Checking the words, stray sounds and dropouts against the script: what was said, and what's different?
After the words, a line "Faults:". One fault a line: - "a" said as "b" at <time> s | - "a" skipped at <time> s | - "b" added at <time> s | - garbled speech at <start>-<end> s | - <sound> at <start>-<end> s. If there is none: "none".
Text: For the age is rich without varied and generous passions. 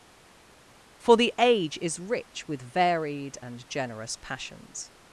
For the age is rich with varied and generous passions.
Faults:
- "without" said as "with" at 2.5 s